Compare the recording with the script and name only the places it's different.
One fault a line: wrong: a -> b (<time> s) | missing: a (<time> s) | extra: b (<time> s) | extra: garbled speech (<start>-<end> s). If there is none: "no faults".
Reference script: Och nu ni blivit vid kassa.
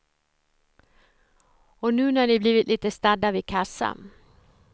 extra: när (2.1 s)
extra: lite stadda (2.7 s)